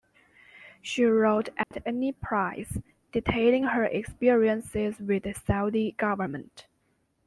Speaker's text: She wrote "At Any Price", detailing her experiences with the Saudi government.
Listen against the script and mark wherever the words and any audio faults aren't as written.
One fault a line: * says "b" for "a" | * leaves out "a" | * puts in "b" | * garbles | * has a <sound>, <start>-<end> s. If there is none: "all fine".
* has a dropout, 1.6-1.7 s